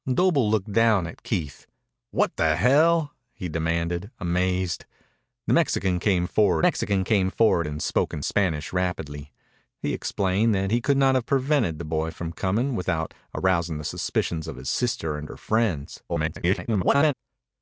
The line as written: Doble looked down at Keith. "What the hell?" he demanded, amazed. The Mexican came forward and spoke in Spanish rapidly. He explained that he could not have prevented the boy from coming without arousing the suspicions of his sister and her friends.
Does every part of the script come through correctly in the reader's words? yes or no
no